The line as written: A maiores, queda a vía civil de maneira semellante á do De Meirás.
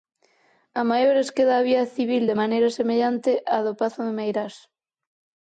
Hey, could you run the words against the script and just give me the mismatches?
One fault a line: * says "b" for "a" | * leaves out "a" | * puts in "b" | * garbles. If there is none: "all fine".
* puts in "Pazo"